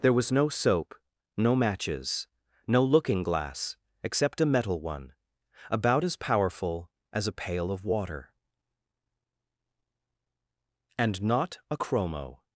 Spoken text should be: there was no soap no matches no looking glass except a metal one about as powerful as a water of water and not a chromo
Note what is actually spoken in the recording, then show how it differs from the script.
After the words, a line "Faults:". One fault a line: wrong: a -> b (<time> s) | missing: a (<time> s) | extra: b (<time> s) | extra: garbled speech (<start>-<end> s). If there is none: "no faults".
there was no soap no matches no looking glass except a metal one about as powerful as a pail of water and not a chromo
Faults:
wrong: water -> pail (7.3 s)